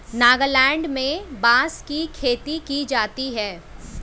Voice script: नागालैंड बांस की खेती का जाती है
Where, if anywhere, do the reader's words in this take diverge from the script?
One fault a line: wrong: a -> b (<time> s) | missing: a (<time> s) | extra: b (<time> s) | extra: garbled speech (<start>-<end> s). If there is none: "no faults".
extra: में (0.9 s)
wrong: का -> की (2.6 s)